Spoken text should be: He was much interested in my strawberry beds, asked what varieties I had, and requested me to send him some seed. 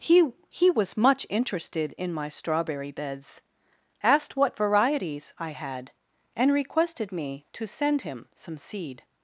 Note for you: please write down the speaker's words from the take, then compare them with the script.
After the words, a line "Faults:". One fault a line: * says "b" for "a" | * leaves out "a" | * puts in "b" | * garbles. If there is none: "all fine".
He he was much interested in my strawberry beds, asked what varieties I had, and requested me to send him some seed.
Faults:
* puts in "he"